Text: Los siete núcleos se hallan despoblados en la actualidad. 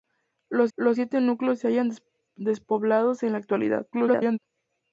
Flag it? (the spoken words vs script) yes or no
yes